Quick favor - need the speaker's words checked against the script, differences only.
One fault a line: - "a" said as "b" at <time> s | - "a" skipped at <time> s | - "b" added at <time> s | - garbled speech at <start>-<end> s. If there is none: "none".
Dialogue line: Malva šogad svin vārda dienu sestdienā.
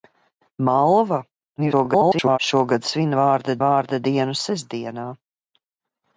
- garbled speech at 1.6-2.4 s
- "vārda" added at 3.6 s